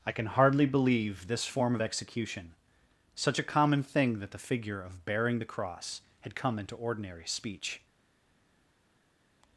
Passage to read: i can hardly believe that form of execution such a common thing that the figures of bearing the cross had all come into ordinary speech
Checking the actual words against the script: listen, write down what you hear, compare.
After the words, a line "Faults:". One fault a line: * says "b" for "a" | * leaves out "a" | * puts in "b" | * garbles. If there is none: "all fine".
i can hardly believe this form of execution such a common thing that the figure of bearing the cross had come into ordinary speech
Faults:
* says "this" for "that"
* says "figure" for "figures"
* leaves out "all"